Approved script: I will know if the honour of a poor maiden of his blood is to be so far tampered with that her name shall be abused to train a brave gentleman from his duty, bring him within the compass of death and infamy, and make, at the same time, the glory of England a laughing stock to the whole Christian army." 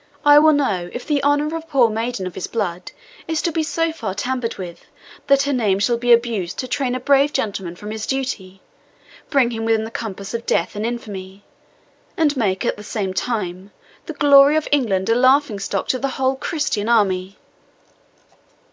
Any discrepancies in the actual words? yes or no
no